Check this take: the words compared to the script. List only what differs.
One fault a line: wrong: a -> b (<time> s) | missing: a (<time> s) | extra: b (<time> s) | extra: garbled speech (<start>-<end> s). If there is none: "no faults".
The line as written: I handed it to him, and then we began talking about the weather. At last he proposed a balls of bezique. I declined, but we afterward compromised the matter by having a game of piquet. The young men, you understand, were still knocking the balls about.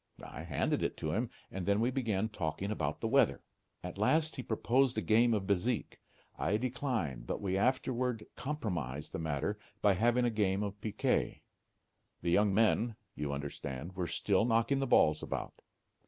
wrong: balls -> game (5.0 s)